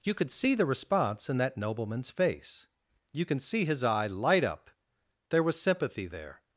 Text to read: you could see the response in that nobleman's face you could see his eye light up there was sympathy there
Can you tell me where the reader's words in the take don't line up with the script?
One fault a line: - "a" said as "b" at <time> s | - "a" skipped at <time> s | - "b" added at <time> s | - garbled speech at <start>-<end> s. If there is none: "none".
- "could" said as "can" at 3.2 s